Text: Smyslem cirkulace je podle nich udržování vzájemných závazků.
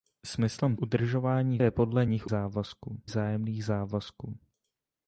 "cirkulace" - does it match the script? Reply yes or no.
no